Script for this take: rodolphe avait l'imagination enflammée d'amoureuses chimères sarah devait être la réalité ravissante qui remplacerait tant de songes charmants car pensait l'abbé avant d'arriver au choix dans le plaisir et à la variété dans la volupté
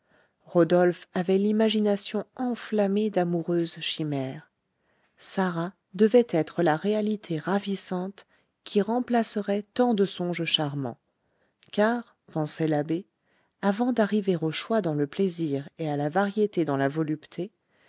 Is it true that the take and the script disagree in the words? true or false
false